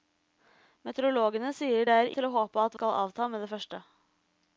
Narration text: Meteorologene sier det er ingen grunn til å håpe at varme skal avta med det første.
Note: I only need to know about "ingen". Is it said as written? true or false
false